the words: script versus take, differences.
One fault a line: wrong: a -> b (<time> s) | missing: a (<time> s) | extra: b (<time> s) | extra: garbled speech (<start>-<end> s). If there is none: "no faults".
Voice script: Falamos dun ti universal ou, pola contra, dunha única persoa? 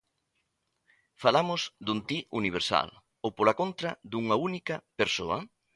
no faults